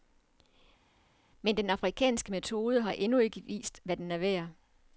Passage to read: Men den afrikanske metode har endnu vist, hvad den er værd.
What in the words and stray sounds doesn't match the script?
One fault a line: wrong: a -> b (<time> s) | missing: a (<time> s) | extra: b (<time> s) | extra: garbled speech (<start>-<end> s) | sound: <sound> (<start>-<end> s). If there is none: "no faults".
extra: ikke (3.2 s)